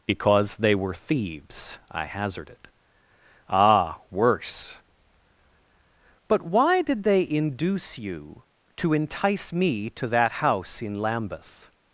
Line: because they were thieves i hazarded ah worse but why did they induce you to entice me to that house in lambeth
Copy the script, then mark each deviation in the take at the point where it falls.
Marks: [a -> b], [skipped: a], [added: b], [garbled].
because they were thieves i hazarded ah worse but why did they induce you to entice me to that house in lambeth